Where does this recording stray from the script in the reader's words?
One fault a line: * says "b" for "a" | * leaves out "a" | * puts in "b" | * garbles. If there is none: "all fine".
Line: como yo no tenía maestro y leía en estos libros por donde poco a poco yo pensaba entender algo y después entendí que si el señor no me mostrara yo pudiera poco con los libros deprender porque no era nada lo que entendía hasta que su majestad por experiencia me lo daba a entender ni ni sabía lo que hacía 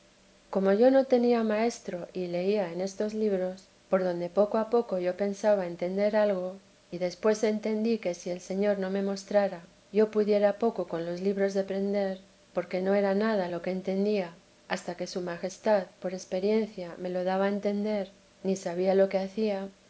* leaves out "ni"